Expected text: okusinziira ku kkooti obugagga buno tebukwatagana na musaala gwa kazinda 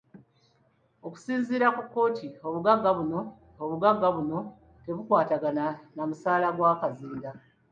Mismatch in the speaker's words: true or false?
true